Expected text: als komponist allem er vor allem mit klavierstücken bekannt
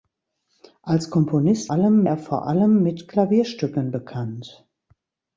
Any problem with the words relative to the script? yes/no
no